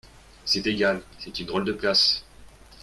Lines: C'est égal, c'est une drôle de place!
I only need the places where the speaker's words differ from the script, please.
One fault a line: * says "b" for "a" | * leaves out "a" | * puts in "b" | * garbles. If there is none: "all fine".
all fine